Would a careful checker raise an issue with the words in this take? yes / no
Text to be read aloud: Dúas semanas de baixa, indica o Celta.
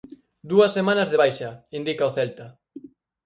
no